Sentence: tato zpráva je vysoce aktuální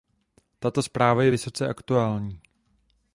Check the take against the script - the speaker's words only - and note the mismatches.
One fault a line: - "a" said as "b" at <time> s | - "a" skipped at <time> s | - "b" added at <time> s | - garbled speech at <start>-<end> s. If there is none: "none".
none